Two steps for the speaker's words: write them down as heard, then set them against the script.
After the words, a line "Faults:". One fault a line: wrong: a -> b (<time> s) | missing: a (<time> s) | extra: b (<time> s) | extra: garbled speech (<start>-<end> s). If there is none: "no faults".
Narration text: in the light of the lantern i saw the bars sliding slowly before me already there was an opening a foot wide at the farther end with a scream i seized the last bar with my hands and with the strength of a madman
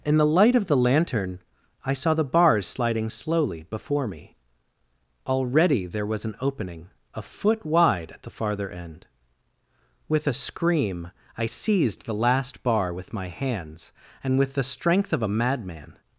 in the light of the lantern i saw the bars sliding slowly before me already there was an opening a foot wide at the farther end with a scream i seized the last bar with my hands and with the strength of a madman
Faults:
no faults